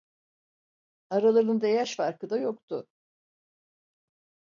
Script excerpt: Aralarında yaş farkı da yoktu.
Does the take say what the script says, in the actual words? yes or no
yes